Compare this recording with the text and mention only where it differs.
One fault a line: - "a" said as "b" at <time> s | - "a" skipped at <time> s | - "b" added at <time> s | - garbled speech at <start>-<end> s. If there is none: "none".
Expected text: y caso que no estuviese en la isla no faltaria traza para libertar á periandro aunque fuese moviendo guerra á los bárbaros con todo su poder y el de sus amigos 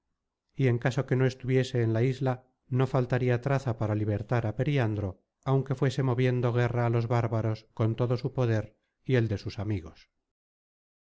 - "en" added at 0.7 s